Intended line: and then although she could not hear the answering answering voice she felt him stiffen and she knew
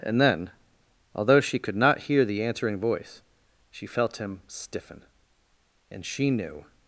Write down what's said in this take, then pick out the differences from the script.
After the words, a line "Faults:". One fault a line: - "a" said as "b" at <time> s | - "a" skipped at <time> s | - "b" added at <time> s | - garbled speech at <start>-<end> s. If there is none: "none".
and then although she could not hear the answering voice she felt him stiffen and she knew
Faults:
- "answering" skipped at 2.8 s